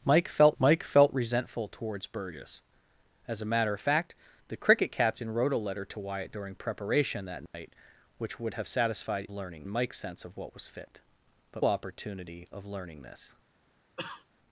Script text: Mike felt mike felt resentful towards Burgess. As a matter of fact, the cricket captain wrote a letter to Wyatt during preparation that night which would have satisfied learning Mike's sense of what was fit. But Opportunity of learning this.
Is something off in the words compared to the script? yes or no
no